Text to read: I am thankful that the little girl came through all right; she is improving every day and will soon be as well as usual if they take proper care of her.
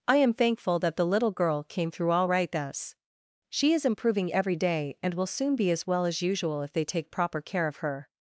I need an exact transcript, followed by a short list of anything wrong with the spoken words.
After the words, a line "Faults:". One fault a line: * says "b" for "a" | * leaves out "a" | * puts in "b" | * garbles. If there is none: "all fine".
I am thankful that the little girl came through all right; thus she is improving every day and will soon be as well as usual if they take proper care of her.
Faults:
* puts in "thus"